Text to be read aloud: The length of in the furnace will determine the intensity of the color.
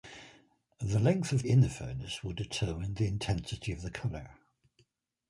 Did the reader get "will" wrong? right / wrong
right